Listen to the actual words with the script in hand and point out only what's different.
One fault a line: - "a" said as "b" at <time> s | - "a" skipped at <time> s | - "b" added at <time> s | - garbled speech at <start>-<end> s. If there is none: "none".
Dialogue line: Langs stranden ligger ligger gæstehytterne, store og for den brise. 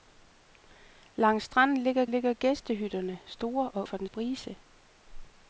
none